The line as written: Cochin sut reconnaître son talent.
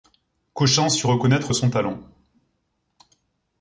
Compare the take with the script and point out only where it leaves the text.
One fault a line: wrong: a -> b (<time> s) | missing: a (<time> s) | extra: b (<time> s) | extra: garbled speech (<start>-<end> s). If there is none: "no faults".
no faults